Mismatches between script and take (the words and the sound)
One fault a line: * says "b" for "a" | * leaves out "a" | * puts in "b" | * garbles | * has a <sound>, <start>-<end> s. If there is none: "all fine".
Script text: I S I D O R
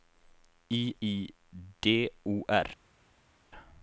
* leaves out "S"